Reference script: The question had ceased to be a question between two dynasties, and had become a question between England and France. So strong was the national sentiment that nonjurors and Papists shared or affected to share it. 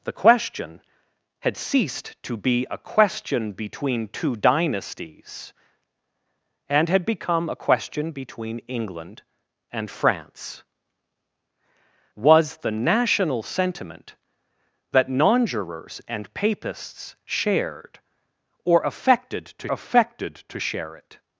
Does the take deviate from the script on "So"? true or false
true